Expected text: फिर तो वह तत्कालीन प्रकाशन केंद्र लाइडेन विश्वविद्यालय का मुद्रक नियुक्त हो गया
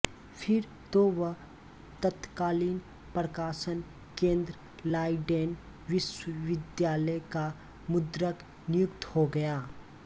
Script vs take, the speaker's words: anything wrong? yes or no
no